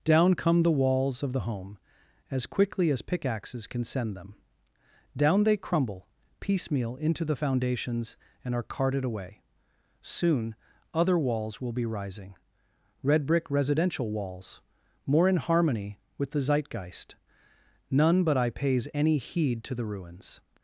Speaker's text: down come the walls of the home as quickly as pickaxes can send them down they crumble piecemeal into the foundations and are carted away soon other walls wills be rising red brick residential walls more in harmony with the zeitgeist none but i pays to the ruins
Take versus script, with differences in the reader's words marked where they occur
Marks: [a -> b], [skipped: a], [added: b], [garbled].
down come the walls of the home as quickly as pickaxes can send them down they crumble piecemeal into the foundations and are carted away soon other walls [wills -> will] be rising red brick residential walls more in harmony with the zeitgeist none but i pays [added: any heed] to the ruins